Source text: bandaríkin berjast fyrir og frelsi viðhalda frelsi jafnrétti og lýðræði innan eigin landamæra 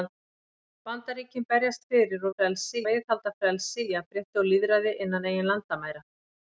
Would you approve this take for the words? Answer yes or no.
yes